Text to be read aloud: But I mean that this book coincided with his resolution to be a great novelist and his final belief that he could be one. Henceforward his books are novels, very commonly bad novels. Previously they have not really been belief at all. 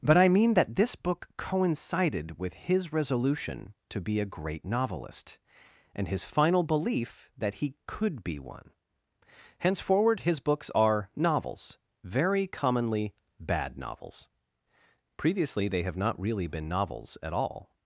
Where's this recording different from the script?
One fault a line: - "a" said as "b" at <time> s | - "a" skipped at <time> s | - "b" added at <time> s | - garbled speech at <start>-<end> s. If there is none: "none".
- "belief" said as "novels" at 16.7 s